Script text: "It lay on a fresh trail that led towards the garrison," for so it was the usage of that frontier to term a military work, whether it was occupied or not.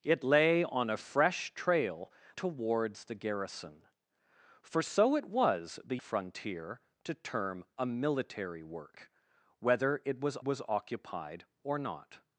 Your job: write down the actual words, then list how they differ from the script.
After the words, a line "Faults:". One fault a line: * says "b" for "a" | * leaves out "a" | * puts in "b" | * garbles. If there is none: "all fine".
"It lay on a fresh trail towards the garrison," for so it was the frontier to term a military work, whether it was was occupied or not.
Faults:
* leaves out "that led"
* leaves out "usage of that"
* puts in "was"